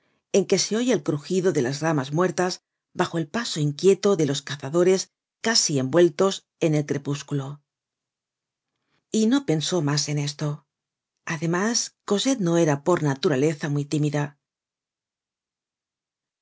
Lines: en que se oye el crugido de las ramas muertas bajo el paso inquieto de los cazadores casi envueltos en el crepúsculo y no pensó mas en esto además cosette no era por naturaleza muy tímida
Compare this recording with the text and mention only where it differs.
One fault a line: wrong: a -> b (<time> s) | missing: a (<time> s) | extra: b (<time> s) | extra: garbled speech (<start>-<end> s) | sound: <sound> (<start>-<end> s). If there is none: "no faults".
no faults